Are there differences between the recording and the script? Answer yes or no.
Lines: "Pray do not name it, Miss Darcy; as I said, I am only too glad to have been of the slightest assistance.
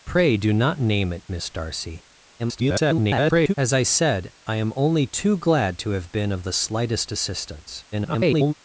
yes